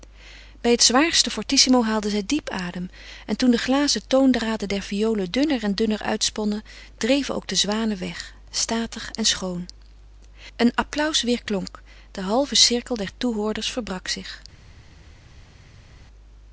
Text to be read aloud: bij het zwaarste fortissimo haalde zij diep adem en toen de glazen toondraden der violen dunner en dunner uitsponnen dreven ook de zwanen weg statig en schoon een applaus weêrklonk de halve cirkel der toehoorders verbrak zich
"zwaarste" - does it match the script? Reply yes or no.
yes